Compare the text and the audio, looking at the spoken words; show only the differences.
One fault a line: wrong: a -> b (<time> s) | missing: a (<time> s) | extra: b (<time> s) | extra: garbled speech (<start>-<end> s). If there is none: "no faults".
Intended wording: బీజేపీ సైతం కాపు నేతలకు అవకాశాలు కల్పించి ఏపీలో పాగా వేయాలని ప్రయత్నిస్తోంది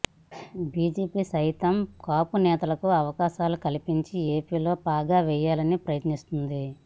no faults